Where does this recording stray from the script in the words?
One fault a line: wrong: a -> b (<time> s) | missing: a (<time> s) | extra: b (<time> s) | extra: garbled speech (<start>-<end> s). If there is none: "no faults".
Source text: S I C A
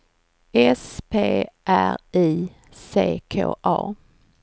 extra: P R (1.1 s)
extra: K (3.3 s)